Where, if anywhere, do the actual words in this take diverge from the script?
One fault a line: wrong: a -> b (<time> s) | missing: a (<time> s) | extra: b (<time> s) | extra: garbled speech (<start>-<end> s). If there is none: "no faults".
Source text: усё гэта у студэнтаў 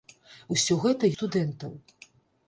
no faults